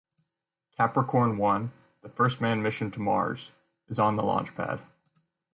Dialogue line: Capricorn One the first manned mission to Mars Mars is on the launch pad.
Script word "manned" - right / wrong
right